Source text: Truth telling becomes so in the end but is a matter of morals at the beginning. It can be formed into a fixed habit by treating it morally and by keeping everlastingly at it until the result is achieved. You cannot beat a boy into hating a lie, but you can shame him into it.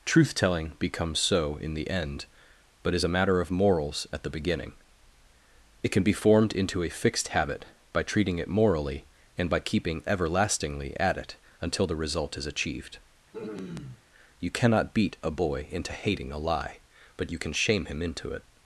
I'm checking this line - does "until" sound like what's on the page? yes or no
yes